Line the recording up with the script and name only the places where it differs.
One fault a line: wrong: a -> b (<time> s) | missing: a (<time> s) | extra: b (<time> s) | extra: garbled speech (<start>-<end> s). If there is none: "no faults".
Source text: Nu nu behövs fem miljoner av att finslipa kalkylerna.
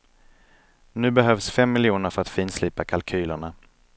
missing: nu (1.1 s)
wrong: av -> för (2.1 s)